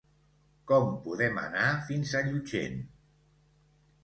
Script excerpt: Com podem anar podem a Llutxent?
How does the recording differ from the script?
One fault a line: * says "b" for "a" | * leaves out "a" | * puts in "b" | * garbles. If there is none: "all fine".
* says "fins" for "podem"